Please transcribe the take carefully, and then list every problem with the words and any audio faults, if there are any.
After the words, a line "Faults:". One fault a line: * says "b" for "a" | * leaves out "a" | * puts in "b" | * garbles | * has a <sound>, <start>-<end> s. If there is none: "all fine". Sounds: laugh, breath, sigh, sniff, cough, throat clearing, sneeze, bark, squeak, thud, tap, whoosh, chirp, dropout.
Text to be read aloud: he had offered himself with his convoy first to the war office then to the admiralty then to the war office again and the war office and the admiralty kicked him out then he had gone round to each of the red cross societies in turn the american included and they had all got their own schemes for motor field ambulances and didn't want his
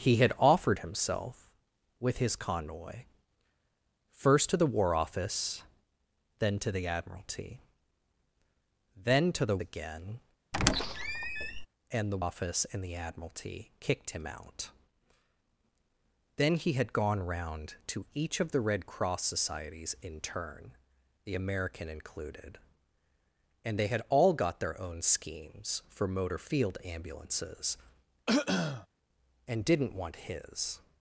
he had offered himself with his convoy first to the war office then to the admiralty then to the again and the office and the admiralty kicked him out then he had gone round to each of the red cross societies in turn the american included and they had all got their own schemes for motor field ambulances and didn't want his
Faults:
* leaves out "war office"
* has a squeak, 10.5-11.7 s
* leaves out "war"
* has a throat clearing, 28.3-28.9 s